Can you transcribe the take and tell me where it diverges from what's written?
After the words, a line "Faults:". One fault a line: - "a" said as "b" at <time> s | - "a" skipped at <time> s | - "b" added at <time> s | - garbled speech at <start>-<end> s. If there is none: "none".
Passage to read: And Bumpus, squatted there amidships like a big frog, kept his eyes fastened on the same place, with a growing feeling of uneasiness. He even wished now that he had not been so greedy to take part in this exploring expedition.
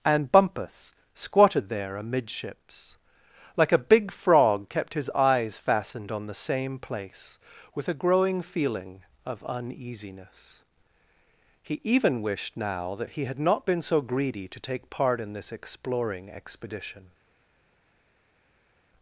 And Bumpus, squatted there amidships like a big frog, kept his eyes fastened on the same place, with a growing feeling of uneasiness. He even wished now that he had not been so greedy to take part in this exploring expedition.
Faults:
none